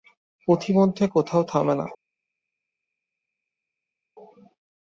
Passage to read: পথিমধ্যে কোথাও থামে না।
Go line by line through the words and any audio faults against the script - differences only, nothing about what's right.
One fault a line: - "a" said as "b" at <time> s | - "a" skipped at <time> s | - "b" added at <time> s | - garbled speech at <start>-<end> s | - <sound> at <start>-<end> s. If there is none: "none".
none